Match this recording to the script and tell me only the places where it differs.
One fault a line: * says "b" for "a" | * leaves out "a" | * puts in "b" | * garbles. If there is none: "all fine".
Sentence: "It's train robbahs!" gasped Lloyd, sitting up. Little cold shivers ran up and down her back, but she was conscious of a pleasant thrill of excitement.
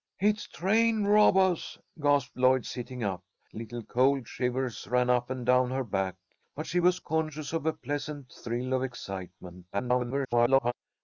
* garbles